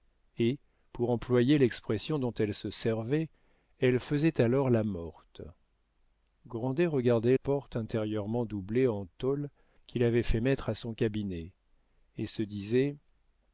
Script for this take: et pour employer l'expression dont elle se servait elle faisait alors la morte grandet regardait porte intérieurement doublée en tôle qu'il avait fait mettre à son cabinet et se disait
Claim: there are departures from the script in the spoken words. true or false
false